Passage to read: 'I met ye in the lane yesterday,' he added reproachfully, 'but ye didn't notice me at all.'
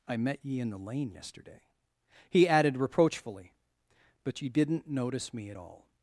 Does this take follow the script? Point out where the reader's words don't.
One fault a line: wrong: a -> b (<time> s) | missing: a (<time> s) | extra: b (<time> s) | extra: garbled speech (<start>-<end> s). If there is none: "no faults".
no faults